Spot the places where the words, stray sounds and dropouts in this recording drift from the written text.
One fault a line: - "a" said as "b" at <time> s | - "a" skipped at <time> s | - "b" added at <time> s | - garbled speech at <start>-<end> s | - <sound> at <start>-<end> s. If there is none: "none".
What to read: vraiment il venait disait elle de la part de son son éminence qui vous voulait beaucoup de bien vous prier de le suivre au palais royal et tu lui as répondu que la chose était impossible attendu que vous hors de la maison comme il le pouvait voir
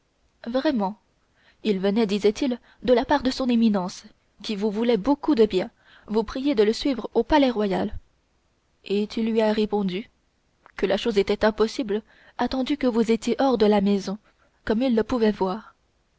- "elle" said as "il" at 2.3 s
- "son" skipped at 3.5 s
- "étiez" added at 13.1 s